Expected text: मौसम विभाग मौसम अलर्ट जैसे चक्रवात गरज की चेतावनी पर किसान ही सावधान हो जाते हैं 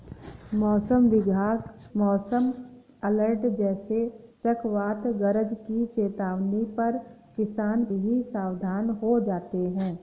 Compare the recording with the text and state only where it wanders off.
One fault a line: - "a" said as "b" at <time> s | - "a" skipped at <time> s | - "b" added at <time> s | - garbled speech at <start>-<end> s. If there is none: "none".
none